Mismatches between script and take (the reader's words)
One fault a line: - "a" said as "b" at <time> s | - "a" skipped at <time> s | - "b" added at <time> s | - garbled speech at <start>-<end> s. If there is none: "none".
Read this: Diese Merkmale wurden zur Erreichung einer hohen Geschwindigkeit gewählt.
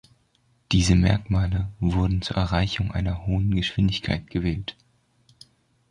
none